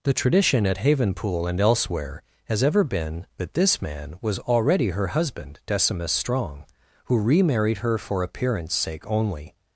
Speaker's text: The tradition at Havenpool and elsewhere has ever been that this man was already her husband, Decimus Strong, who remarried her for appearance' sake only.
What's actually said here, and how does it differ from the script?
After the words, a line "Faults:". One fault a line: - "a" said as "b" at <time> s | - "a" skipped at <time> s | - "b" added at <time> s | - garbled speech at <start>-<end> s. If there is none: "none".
The tradition at Havenpool and elsewhere has ever been that this man was already her husband, Decimus Strong, who remarried her for appearance' sake only.
Faults:
none